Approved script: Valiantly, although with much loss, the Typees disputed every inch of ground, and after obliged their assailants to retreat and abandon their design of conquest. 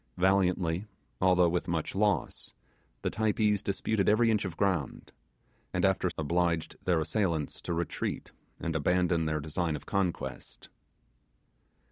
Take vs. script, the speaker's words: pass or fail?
pass